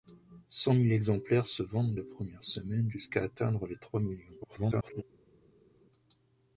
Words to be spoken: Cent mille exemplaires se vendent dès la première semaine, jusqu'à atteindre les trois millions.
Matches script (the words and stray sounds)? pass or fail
fail